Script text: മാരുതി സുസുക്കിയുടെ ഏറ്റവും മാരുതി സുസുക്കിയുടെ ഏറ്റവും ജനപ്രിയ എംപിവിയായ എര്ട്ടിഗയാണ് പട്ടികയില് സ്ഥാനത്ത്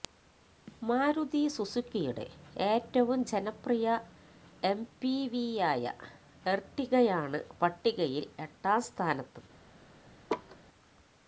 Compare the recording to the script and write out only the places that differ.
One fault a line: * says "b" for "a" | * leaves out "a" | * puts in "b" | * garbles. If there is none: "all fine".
* leaves out "മാരുതി സുസുക്കിയുടെ ഏറ്റവും"
* puts in "എട്ടാം"